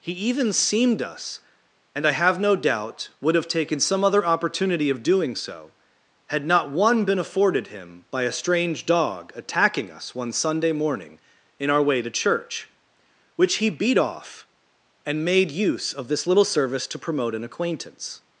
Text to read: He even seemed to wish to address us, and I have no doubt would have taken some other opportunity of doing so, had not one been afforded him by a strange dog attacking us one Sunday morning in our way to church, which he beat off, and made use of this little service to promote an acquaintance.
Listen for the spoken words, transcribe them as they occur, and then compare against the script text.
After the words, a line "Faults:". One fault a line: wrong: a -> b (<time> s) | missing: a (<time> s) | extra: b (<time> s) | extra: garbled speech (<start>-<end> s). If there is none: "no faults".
He even seemed us, and I have no doubt would have taken some other opportunity of doing so, had not one been afforded him by a strange dog attacking us one Sunday morning in our way to church, which he beat off, and made use of this little service to promote an acquaintance.
Faults:
missing: to wish to address (1.0 s)